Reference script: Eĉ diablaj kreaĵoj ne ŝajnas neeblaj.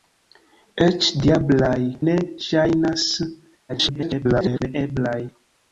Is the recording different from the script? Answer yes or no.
yes